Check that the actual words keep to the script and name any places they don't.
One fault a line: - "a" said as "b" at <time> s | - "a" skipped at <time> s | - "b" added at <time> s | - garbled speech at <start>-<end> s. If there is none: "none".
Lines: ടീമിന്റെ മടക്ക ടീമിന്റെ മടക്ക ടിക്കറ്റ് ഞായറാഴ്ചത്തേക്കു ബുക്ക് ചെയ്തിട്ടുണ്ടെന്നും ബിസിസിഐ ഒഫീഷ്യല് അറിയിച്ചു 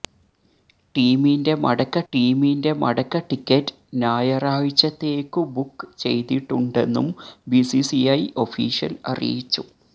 none